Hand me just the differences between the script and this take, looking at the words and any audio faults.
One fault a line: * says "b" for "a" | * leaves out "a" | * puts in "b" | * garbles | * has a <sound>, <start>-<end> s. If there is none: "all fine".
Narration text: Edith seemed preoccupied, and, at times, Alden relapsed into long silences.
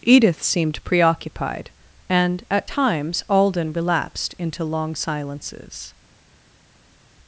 all fine